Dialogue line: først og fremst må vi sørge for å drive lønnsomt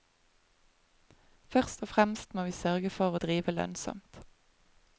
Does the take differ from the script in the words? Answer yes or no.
no